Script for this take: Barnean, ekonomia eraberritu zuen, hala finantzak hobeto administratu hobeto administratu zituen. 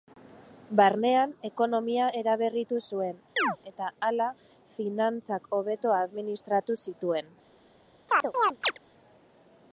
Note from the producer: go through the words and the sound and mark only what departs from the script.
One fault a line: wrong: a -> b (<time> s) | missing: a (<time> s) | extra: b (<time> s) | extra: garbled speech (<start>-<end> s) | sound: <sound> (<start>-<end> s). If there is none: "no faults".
sound: chirp (3.4-3.6 s)
extra: eta (3.7 s)
missing: hobeto administratu (6.8 s)
sound: chirp (8.1-8.8 s)